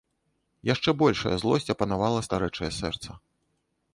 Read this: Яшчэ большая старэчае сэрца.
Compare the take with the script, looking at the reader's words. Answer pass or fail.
fail